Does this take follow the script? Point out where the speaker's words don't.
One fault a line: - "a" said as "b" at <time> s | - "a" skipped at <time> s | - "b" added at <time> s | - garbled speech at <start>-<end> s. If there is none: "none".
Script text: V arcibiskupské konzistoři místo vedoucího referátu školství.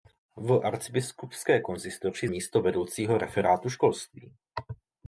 none